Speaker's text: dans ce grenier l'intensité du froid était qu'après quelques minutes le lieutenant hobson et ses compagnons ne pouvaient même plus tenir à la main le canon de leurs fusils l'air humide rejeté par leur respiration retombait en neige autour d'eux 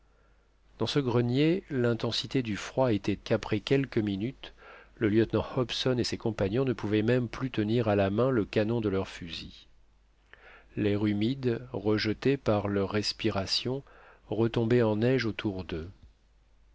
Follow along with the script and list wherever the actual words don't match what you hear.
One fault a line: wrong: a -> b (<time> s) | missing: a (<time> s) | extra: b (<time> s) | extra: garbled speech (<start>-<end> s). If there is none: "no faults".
no faults